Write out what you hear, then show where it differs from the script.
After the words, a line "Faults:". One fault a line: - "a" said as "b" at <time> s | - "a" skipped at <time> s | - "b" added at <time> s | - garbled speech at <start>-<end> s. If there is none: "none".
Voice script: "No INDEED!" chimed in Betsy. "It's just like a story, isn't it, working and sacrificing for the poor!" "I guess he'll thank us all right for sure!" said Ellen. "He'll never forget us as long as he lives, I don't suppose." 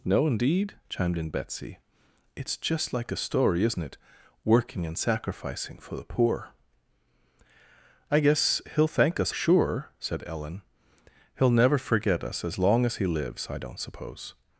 "No INDEED!" chimed in Betsy. "It's just like a story, isn't it, working and sacrificing for the poor!" "I guess he'll thank us sure!" said Ellen. "He'll never forget us as long as he lives, I don't suppose."
Faults:
- "all right for" skipped at 9.3 s